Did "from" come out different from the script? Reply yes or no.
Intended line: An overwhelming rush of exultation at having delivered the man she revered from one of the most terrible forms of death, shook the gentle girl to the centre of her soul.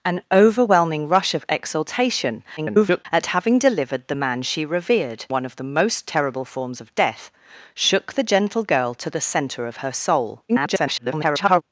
yes